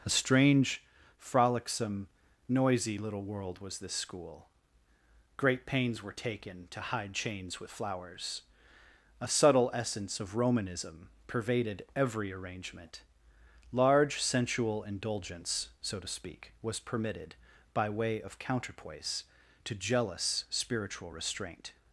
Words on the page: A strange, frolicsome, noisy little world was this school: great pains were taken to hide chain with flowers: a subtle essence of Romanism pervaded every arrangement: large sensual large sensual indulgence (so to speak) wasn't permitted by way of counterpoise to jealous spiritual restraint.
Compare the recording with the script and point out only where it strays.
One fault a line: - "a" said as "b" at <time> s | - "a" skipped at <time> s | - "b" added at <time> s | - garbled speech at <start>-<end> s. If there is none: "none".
- "chain" said as "chains" at 7.1 s
- "large sensual" skipped at 14.8 s
- "wasn't" said as "was" at 16.6 s